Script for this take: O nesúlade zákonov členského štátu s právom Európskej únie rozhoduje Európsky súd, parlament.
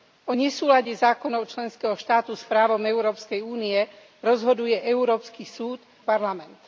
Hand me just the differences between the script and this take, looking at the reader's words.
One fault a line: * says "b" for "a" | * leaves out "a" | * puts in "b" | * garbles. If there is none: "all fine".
all fine